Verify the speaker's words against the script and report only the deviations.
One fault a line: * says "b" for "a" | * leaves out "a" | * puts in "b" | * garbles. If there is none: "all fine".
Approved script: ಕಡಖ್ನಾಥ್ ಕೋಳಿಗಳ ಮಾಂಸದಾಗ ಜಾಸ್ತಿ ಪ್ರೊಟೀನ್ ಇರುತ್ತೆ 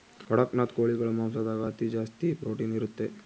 * puts in "ಅತಿ"